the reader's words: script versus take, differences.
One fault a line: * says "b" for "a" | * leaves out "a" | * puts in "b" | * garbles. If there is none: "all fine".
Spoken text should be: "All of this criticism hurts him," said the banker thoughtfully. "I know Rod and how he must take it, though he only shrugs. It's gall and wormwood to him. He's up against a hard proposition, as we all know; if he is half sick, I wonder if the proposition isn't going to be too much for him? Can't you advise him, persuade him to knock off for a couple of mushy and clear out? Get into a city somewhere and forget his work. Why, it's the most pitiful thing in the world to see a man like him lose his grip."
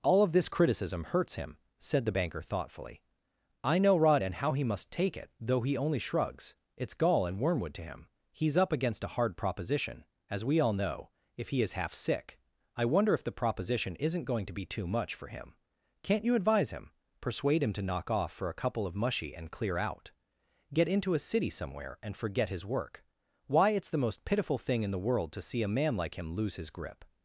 all fine